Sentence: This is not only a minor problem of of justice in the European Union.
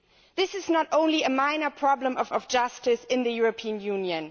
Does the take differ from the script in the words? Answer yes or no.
no